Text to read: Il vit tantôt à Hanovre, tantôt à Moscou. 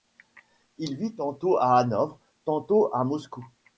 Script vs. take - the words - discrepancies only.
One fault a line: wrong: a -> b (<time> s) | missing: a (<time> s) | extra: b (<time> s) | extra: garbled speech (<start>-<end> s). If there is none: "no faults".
no faults